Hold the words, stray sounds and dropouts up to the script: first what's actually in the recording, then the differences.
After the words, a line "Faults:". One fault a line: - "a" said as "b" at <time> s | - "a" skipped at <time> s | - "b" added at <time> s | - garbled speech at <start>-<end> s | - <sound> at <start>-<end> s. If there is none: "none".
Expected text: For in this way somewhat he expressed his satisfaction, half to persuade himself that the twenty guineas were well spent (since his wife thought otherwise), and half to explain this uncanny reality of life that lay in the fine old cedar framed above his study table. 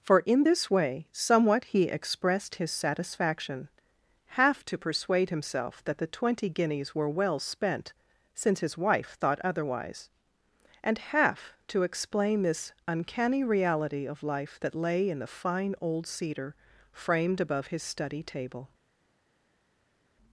For in this way somewhat he expressed his satisfaction, half to persuade himself that the twenty guineas were well spent (since his wife thought otherwise), and half to explain this uncanny reality of life that lay in the fine old cedar framed above his study table.
Faults:
none